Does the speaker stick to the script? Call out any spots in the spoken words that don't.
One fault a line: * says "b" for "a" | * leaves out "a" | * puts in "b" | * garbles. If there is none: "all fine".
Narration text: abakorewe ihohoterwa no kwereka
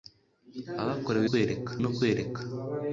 * says "kwereka" for "ihohoterwa"